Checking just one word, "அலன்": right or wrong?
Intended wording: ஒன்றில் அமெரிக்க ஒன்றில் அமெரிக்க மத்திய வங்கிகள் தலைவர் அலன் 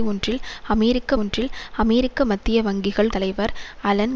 right